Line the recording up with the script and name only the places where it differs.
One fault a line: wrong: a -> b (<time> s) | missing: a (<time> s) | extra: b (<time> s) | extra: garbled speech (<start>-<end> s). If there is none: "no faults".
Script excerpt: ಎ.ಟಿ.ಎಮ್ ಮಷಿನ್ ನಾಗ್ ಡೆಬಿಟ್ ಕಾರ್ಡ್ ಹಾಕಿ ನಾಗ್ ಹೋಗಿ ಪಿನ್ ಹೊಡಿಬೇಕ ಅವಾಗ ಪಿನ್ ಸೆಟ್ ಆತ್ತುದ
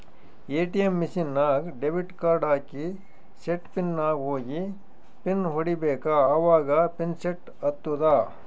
extra: ಸೆಟ್ ಪಿನ್ (3.4 s)